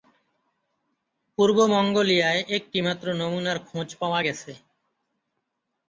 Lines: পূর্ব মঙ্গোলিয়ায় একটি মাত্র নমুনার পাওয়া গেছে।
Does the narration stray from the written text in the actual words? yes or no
yes